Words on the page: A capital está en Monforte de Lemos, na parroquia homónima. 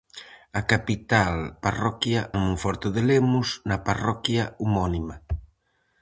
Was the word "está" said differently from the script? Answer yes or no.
yes